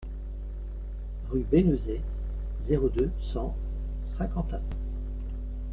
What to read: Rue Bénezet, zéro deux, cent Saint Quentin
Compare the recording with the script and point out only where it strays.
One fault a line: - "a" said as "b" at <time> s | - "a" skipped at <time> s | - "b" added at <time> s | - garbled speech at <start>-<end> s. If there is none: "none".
none